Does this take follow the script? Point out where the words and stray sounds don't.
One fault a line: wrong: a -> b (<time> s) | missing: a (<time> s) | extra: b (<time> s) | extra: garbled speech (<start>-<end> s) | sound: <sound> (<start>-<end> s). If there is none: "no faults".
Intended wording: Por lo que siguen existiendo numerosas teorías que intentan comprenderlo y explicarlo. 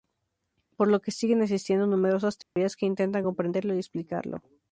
sound: dropout (2.4-2.6 s)